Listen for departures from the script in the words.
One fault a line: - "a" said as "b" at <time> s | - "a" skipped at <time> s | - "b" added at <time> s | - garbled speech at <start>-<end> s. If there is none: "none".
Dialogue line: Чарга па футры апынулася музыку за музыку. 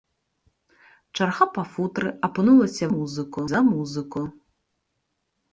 none